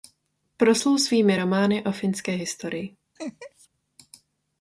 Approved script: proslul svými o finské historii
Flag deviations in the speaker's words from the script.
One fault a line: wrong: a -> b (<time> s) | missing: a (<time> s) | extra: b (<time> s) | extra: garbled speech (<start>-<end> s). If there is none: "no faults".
extra: romány (1.3 s)